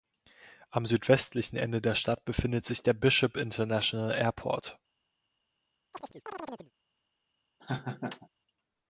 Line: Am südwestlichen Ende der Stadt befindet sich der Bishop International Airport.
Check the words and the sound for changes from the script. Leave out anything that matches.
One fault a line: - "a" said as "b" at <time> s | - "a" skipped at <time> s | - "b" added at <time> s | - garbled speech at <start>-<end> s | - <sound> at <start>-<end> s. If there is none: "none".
- chirp at 5.9-6.7 s
- laugh at 7.6-8.3 s